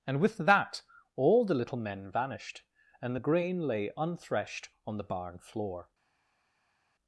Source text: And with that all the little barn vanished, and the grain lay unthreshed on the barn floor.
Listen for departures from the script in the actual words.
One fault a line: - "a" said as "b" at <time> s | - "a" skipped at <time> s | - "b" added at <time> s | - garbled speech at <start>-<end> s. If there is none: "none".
- "barn" said as "men" at 1.8 s